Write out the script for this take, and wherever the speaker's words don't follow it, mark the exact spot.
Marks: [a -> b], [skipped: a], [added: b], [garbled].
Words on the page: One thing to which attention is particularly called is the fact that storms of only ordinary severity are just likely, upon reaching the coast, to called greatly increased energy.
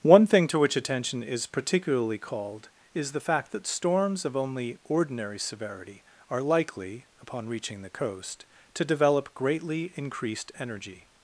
One thing to which attention is particularly called is the fact that storms of only ordinary severity are [skipped: just] likely, upon reaching the coast, to [called -> develop] greatly increased energy.